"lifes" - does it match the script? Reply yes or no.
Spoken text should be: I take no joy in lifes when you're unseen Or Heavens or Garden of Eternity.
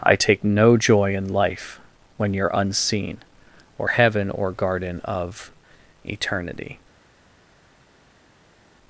no